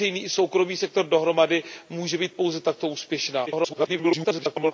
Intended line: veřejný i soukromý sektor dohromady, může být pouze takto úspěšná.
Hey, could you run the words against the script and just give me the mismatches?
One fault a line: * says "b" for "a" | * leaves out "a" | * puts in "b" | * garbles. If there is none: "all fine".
* garbles